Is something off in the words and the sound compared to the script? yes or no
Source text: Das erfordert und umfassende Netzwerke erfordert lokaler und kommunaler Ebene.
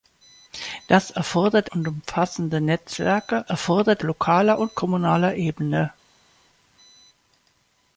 no